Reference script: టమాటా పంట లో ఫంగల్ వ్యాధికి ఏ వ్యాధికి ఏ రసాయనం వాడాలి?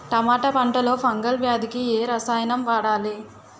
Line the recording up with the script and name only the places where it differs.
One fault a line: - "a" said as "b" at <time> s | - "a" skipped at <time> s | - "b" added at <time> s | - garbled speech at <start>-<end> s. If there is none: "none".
- "వ్యాధికి ఏ" skipped at 2.0 s